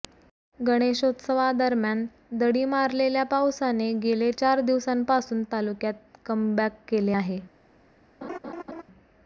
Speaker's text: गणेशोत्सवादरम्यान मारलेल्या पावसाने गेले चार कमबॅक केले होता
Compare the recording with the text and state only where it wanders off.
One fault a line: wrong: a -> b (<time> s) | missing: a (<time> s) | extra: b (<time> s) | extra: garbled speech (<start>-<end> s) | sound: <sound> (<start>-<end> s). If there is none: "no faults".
extra: दडी (2.4 s)
extra: दिवसांपासून तालुक्यात (4.6 s)
wrong: होता -> आहे (7.1 s)
sound: laugh (8.2-8.8 s)